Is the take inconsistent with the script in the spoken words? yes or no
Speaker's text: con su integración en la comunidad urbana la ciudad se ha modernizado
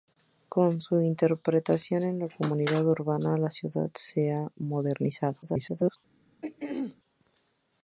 yes